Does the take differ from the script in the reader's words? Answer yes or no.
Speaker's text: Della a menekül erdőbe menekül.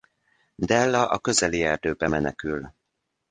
yes